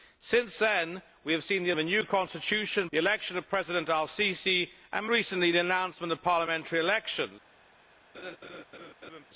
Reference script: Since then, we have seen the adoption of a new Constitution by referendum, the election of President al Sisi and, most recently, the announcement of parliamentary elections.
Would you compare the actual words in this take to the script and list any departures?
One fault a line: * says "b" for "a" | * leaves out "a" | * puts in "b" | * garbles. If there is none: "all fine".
* leaves out "adoption"
* leaves out "by referendum"
* leaves out "most"